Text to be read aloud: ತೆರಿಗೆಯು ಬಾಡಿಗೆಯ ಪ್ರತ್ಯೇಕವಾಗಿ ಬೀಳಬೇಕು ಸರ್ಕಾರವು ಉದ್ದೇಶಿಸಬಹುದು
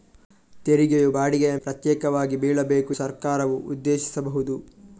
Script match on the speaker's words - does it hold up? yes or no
yes